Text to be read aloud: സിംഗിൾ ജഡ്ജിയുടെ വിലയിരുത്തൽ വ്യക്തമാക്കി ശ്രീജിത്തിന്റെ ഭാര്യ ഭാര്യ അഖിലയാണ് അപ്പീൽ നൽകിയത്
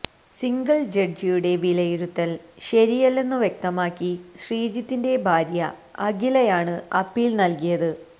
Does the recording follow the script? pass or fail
fail